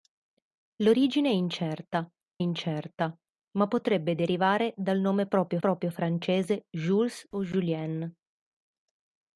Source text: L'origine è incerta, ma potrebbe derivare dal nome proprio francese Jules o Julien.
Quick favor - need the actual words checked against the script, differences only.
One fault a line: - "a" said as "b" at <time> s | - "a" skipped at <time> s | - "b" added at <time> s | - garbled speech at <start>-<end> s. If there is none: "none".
- "incerta" added at 2.4 s
- "proprio" added at 5.6 s